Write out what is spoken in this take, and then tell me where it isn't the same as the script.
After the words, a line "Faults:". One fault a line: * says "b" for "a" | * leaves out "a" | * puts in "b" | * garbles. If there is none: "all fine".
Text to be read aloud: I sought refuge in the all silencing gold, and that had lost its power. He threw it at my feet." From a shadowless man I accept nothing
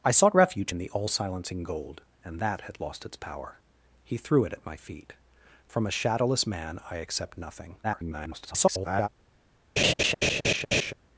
I sought refuge in the all silencing gold, and that had lost its power. He threw it at my feet." From a shadowless man I accept nothing [garbled]
Faults:
* garbles